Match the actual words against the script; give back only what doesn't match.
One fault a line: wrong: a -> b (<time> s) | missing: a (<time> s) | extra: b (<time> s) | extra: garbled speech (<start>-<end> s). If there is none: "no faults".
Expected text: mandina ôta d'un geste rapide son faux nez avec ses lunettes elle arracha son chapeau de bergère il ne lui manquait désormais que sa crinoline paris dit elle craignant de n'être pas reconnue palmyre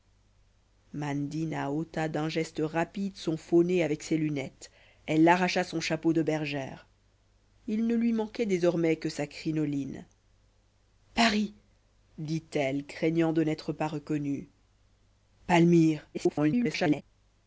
extra: garbled speech (16.1-17.0 s)